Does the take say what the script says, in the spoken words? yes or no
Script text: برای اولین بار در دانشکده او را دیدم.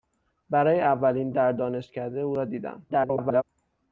no